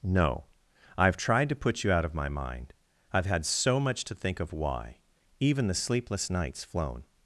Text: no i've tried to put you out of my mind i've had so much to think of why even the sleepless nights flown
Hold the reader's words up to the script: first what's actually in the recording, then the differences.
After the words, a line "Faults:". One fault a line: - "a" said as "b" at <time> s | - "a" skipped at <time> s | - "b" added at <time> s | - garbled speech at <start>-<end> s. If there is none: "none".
no i've tried to put you out of my mind i've had so much to think of why even the sleepless nights flown
Faults:
none